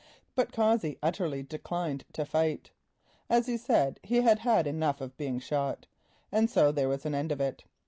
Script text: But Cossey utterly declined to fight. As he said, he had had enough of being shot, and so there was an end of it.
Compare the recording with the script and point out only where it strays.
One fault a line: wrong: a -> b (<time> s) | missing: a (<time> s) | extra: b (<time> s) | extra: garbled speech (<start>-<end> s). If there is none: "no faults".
no faults